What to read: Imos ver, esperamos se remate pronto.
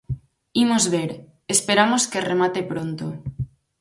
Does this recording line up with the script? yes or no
no